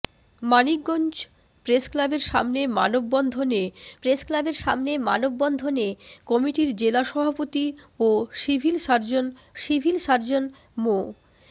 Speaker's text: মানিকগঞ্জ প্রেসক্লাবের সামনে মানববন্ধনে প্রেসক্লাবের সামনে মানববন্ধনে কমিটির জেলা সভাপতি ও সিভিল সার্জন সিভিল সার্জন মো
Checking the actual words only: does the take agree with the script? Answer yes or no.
yes